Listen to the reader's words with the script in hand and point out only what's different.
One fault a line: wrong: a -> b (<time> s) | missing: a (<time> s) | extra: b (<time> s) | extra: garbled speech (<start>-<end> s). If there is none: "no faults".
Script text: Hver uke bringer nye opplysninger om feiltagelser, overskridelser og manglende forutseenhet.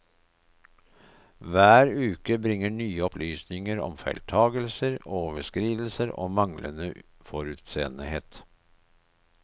no faults